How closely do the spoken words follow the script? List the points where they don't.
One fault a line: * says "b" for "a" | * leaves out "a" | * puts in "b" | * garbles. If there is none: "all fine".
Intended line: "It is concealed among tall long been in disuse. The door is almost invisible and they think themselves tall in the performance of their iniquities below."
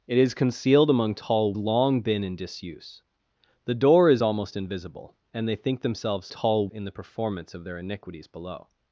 all fine